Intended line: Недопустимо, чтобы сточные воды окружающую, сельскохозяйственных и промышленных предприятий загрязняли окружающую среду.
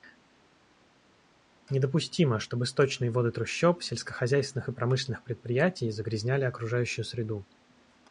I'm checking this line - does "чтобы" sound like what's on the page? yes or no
yes